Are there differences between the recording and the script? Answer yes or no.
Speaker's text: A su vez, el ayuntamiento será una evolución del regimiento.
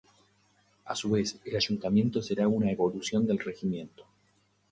no